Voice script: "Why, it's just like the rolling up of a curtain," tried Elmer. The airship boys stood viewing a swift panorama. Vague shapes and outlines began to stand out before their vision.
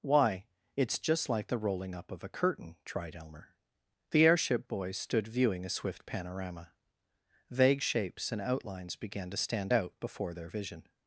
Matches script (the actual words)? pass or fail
pass